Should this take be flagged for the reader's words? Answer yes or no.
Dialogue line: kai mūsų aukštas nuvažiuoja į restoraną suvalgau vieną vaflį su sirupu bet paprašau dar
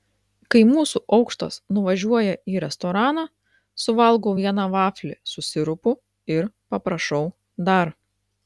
yes